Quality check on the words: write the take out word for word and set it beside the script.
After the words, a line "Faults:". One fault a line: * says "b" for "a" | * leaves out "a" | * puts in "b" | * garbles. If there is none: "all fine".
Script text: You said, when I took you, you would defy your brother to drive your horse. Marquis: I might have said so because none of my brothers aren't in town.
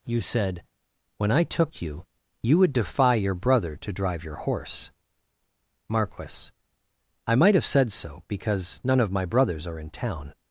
You said, when I took you, you would defy your brother to drive your horse. Marquis: I might have said so because none of my brothers are in town.
Faults:
* says "are" for "aren't"